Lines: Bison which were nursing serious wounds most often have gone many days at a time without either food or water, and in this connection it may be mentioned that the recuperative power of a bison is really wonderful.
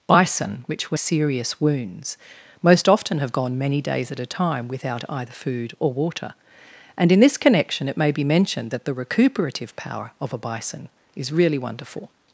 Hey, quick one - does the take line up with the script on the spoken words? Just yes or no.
no